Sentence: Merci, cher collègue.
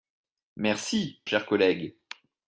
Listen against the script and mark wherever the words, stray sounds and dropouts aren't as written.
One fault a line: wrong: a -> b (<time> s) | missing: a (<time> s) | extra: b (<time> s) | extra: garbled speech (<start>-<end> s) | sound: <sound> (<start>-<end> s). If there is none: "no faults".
no faults